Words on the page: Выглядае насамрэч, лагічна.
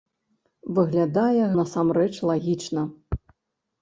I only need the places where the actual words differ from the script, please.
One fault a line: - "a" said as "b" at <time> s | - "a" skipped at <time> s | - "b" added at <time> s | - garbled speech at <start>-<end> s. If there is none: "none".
none